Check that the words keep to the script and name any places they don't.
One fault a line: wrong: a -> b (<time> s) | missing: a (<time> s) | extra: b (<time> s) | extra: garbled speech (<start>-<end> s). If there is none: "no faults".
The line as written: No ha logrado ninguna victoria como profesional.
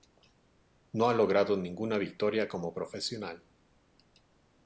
no faults